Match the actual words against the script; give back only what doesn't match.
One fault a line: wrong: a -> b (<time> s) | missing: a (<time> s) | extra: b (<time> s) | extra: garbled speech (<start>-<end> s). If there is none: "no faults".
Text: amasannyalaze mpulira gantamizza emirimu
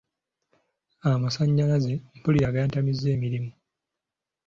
no faults